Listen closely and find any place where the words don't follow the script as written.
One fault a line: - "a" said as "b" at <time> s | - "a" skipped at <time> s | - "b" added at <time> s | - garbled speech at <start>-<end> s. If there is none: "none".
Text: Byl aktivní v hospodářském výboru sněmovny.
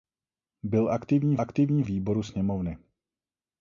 - "hospodářském" said as "aktivní" at 1.4 s